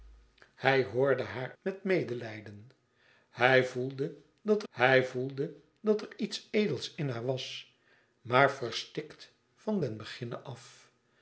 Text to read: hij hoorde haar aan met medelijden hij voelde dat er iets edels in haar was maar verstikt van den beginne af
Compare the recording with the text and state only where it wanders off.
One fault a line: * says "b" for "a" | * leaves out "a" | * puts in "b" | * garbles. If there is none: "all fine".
* leaves out "aan"
* puts in "hij voelde dat"